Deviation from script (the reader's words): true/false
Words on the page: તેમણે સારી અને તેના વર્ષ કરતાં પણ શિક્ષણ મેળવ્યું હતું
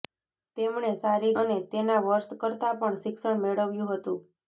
false